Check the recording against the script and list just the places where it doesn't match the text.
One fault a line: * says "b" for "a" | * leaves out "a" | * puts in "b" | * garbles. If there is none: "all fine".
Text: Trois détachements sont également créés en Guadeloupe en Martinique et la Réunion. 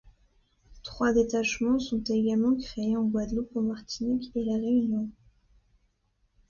all fine